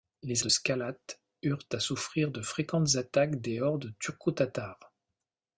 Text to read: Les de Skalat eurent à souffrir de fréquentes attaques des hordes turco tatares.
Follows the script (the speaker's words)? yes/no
yes